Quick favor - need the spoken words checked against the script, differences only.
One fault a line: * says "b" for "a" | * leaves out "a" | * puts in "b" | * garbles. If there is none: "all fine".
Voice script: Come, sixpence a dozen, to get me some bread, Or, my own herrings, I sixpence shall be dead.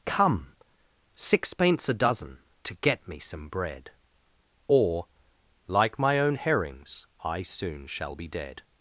* puts in "like"
* says "soon" for "sixpence"